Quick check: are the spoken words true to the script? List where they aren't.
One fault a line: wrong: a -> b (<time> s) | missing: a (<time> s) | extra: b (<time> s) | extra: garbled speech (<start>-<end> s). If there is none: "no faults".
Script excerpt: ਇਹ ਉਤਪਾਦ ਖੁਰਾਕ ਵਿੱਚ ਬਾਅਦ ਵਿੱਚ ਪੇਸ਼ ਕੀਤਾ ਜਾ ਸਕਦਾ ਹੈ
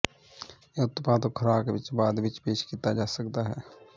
no faults